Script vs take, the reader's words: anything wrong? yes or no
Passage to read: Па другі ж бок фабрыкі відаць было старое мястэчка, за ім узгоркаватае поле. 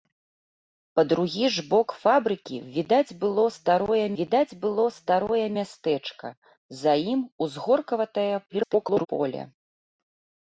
yes